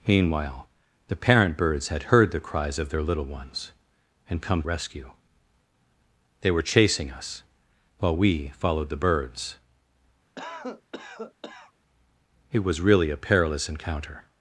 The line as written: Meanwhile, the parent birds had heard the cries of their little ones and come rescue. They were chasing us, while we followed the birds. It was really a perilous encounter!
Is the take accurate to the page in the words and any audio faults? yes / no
no